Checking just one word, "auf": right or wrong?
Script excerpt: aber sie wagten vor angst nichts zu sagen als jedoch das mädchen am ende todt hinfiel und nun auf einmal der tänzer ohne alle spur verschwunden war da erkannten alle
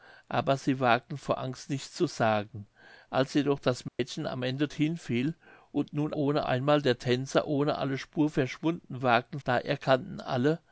wrong